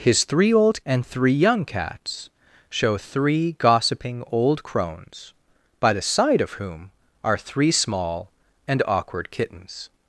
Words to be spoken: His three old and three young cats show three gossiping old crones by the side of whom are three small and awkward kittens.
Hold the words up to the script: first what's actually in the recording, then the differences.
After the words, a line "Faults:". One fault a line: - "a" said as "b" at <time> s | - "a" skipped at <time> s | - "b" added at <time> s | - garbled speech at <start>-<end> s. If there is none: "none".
His three old and three young cats show three gossiping old crones by the side of whom are three small and awkward kittens.
Faults:
none